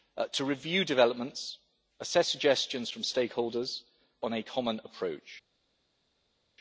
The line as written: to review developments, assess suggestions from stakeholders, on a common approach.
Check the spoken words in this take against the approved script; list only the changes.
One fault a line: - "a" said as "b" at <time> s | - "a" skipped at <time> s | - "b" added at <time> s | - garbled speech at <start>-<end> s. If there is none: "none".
none